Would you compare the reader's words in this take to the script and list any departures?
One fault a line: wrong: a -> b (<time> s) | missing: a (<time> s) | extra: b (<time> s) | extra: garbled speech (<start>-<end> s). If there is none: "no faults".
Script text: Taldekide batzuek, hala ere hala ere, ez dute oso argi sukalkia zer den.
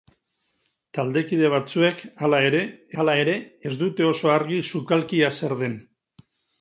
no faults